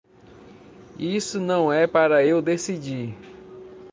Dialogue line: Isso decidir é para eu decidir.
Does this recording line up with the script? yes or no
no